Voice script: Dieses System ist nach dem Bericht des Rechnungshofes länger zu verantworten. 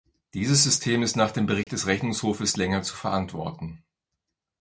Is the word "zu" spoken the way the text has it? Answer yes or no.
yes